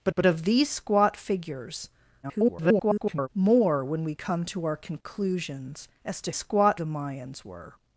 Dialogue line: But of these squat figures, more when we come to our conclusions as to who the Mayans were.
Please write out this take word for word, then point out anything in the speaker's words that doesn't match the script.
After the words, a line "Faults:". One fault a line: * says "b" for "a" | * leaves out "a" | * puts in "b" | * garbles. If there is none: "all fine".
But but of these squat figures, [garbled] more when we come to our conclusions as to squat the Mayans were.
Faults:
* puts in "but"
* garbles
* says "squat" for "who"